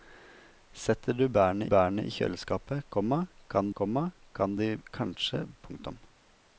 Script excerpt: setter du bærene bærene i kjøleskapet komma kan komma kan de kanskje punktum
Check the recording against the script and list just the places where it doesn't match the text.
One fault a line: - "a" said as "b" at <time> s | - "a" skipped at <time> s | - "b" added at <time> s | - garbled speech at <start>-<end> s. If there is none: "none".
none